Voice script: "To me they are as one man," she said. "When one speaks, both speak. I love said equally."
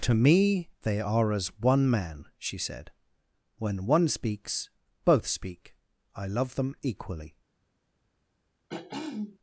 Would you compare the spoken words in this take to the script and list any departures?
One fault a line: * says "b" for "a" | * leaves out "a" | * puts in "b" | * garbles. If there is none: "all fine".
* says "them" for "said"